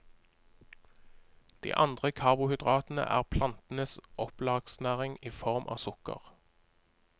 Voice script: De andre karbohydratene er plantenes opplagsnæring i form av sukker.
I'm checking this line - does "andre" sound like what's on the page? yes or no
yes